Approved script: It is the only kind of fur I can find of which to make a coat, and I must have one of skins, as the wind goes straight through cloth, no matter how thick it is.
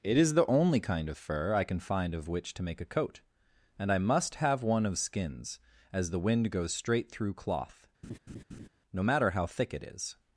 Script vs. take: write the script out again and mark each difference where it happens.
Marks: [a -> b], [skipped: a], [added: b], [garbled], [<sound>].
It is the only kind of fur I can find of which to make a coat, and I must have one of skins, as the wind goes straight through cloth, [laugh] no matter how thick it is.